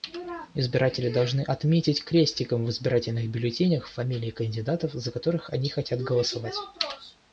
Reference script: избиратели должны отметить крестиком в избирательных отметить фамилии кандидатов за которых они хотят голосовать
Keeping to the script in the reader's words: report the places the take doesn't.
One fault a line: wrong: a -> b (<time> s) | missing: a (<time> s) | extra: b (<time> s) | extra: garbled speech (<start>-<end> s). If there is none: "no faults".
wrong: отметить -> бюллетенях (3.3 s)